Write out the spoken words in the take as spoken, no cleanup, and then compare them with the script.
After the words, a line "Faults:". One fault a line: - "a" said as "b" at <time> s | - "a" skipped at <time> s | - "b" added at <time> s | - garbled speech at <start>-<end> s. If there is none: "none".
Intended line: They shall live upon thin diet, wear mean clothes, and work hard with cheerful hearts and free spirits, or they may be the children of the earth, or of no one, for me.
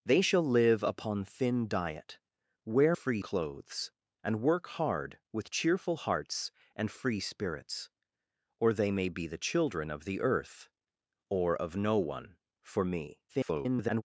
They shall live upon thin diet, wear free clothes, and work hard with cheerful hearts and free spirits, or they may be the children of the earth, or of no one, for me. [garbled]
Faults:
- "mean" said as "free" at 2.9 s
- garbled speech at 13.3-14.0 s